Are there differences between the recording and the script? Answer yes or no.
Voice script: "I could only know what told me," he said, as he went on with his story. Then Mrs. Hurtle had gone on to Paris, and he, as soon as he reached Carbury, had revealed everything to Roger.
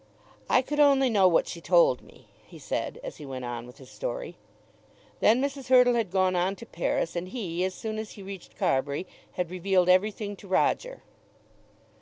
yes